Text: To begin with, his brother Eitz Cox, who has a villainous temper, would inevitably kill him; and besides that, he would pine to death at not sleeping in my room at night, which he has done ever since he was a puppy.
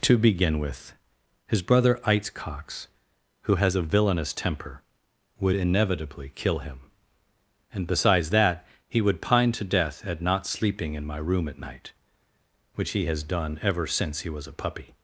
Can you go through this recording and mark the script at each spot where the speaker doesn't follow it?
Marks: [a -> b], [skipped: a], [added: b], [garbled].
To begin with, his brother Eitz Cox, who has a villainous temper, would inevitably kill him; and besides that, he would pine to death at not sleeping in my room at night, which he has done ever since he was a puppy.